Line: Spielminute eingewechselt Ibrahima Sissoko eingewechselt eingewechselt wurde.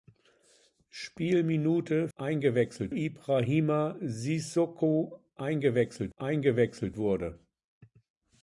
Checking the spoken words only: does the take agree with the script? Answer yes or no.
yes